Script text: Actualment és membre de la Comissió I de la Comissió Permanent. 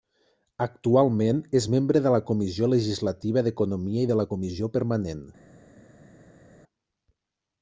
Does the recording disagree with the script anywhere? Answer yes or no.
yes